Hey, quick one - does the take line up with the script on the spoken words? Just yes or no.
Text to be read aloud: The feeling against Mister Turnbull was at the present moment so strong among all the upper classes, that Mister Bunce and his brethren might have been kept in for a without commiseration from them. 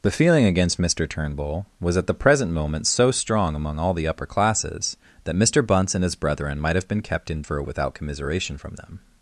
yes